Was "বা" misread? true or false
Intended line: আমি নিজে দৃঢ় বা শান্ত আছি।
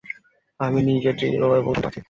true